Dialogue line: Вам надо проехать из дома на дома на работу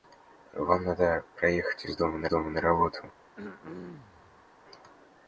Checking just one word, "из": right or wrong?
right